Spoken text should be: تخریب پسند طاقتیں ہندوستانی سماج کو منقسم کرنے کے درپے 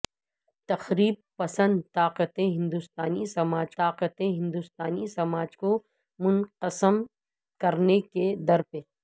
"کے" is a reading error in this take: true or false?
false